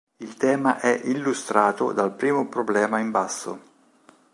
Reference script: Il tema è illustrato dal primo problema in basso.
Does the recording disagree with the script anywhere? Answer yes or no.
no